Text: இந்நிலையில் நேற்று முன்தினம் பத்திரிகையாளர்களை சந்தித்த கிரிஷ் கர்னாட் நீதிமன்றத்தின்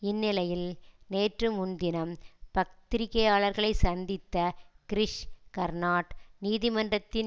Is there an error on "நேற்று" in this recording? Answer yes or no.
no